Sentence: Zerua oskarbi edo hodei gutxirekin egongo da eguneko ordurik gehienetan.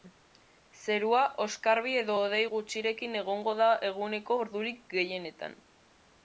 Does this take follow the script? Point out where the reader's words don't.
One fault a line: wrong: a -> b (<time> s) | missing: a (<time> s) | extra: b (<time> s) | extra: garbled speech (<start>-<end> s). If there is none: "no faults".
no faults